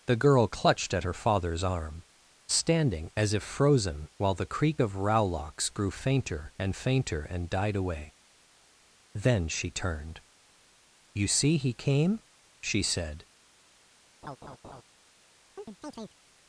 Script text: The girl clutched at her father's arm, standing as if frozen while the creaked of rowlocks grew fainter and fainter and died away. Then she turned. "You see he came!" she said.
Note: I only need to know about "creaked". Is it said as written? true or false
false